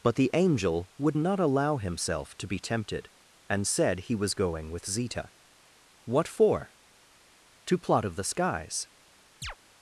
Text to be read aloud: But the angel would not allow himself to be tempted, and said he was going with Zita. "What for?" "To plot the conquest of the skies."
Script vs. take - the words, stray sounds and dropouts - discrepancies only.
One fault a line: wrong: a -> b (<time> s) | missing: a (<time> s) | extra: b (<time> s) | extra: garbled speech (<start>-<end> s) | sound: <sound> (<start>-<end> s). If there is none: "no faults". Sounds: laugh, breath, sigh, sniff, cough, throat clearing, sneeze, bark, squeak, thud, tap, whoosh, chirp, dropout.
missing: the conquest (8.0 s)
sound: chirp (9.4-9.6 s)